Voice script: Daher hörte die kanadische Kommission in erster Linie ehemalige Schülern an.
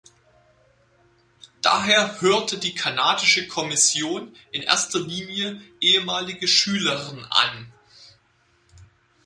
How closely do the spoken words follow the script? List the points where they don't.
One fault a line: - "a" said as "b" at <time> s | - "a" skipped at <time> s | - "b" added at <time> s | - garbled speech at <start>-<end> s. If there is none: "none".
none